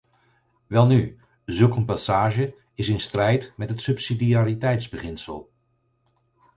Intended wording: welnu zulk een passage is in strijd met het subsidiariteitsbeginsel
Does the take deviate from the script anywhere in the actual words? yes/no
no